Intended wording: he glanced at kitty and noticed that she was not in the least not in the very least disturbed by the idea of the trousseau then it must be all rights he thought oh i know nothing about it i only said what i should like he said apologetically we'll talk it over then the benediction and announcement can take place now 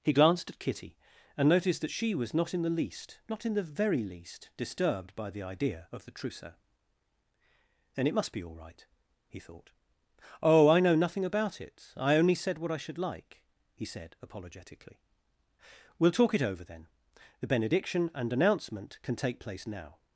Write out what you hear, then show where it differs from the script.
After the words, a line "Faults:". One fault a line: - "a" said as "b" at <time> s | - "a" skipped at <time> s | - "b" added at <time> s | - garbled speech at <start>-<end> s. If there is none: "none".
he glanced at kitty and noticed that she was not in the least not in the very least disturbed by the idea of the trousseau then it must be all right he thought oh i know nothing about it i only said what i should like he said apologetically we'll talk it over then the benediction and announcement can take place now
Faults:
- "rights" said as "right" at 8.6 s